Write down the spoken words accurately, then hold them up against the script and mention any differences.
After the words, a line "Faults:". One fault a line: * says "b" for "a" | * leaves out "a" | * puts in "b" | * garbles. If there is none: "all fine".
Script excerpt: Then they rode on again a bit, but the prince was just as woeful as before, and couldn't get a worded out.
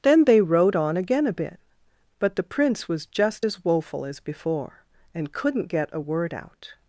Then they rode on again a bit, but the prince was just as woeful as before, and couldn't get a word out.
Faults:
* says "word" for "worded"